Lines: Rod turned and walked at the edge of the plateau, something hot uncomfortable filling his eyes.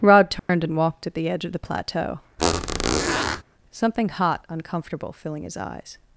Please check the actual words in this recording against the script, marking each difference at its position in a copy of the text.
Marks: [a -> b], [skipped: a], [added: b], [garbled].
Rod turned and walked at the edge of the plateau, something hot uncomfortable filling his eyes.